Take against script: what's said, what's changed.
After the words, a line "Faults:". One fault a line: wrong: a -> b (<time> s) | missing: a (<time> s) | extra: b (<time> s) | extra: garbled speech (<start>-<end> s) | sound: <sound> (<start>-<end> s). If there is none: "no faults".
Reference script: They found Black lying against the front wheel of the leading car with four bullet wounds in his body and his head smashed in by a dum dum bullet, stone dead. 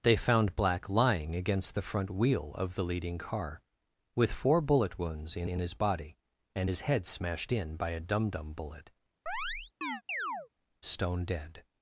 They found Black lying against the front wheel of the leading car with four bullet wounds in in his body and his head smashed in by a dum dum bullet, stone dead.
Faults:
extra: in (5.5 s)
sound: chirp (9.3-10.5 s)